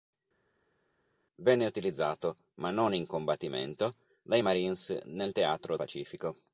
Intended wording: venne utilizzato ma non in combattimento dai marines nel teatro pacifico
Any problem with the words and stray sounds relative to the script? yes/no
no